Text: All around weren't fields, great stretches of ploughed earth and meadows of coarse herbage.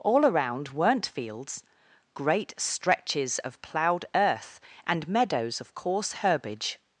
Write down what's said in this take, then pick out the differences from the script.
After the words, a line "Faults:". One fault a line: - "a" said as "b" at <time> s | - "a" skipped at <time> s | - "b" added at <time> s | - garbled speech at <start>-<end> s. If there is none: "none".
All around weren't fields, great stretches of ploughed earth and meadows of coarse herbage.
Faults:
none